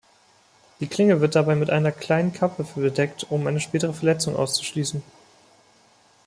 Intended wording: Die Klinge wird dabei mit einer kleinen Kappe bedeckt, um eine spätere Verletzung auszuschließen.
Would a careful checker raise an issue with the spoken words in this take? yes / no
no